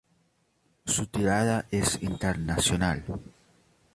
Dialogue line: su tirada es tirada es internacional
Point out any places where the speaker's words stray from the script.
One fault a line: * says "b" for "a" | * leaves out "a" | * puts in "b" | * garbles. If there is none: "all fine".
* leaves out "tirada es"